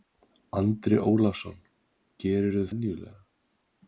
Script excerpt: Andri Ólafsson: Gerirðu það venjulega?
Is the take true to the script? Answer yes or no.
no